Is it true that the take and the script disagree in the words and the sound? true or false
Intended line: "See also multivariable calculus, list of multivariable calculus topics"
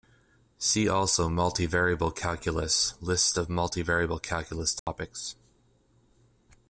true